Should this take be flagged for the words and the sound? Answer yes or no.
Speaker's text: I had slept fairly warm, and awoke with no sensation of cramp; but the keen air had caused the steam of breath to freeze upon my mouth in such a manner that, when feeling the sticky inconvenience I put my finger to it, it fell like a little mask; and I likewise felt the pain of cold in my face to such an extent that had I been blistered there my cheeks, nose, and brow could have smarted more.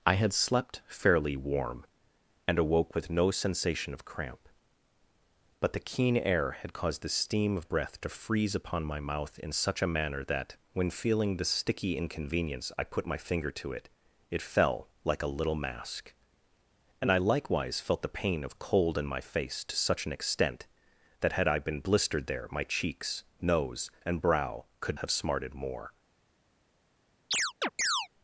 yes